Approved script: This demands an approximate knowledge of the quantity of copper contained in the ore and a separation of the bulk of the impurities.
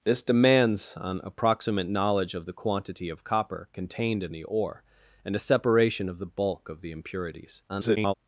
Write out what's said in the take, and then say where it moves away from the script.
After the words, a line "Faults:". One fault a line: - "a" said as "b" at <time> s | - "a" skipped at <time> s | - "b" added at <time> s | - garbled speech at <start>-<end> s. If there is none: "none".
This demands an approximate knowledge of the quantity of copper contained in the ore and a separation of the bulk of the impurities. [garbled]
Faults:
- garbled speech at 7.7-8.1 s